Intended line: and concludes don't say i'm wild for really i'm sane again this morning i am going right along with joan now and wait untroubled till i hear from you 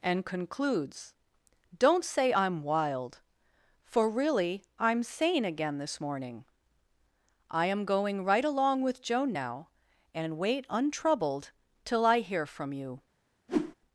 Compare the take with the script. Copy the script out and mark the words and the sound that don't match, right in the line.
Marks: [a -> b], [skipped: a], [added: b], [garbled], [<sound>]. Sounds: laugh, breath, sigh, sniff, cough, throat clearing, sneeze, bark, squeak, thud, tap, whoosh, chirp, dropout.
and concludes don't say i'm wild for really i'm sane again this morning i am going right along with joan now and wait untroubled till i hear from you [whoosh]